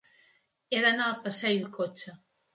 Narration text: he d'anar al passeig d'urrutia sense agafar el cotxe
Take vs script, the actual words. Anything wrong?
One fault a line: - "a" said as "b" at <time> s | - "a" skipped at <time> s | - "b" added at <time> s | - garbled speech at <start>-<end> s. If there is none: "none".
- "d'urrutia sense agafar" skipped at 1.6 s